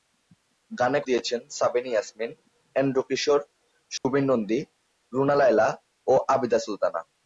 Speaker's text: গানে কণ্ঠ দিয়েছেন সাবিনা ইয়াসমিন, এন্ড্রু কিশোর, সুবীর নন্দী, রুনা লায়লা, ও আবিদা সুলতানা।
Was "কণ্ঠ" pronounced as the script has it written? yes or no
no